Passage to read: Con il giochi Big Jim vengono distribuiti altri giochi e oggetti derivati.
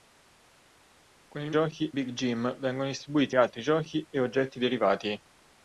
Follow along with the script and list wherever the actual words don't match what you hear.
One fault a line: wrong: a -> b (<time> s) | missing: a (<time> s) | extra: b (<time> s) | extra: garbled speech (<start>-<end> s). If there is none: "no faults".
no faults